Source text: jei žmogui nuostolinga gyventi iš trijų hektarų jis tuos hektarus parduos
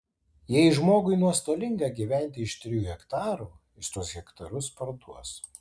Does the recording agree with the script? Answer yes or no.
yes